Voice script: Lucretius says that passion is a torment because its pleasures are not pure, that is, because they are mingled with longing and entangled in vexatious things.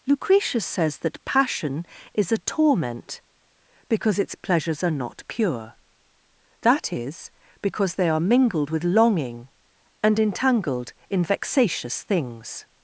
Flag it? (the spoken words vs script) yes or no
no